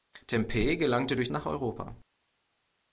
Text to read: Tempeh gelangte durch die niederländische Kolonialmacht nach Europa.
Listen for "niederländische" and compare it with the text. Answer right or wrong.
wrong